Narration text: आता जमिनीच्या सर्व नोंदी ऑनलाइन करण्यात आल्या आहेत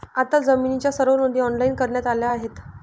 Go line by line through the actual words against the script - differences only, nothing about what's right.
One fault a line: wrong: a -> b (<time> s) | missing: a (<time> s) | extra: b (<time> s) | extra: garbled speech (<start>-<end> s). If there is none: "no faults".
no faults